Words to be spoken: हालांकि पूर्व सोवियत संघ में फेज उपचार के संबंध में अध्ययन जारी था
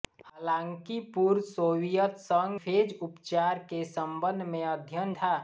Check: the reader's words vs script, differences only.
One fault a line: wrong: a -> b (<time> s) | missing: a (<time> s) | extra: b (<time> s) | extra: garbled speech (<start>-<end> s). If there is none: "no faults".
missing: में (2.6 s)
missing: जारी (5.1 s)